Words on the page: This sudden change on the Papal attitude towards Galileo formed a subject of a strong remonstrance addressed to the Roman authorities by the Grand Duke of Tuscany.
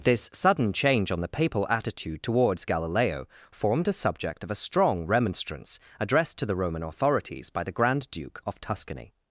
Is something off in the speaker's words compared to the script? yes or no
no